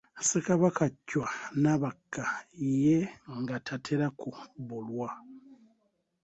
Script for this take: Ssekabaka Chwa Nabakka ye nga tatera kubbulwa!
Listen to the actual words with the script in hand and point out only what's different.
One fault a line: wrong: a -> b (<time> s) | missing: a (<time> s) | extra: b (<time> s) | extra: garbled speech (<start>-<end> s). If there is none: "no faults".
no faults